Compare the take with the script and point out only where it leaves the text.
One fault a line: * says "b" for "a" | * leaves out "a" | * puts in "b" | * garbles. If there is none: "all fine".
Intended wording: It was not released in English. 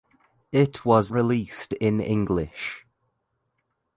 * leaves out "not"